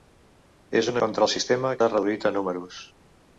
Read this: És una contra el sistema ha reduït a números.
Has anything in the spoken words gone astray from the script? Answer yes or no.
no